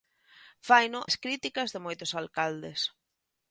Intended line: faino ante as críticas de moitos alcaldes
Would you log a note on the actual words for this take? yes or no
yes